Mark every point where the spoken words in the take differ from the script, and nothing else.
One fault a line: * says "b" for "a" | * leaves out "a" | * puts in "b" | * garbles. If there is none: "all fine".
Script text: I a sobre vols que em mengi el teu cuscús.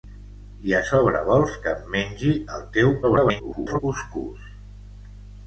* garbles